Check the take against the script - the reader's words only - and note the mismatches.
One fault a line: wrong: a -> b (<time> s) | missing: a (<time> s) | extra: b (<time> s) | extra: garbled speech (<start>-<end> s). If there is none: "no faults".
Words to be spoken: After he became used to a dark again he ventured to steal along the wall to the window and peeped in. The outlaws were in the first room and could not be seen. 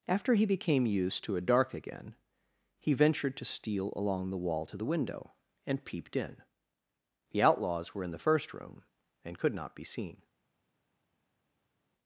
no faults